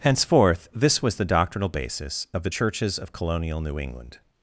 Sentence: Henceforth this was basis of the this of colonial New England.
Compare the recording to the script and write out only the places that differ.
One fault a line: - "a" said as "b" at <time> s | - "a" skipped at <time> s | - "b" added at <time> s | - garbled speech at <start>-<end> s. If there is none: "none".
- "the doctrinal" added at 1.2 s
- "this" said as "churches" at 2.5 s